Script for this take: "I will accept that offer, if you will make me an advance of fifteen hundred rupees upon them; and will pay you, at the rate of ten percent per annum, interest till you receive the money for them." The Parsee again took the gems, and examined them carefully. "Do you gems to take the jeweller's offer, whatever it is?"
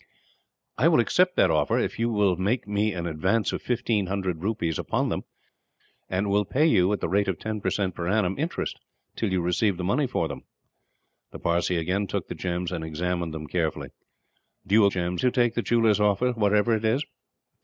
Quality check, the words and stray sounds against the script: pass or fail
pass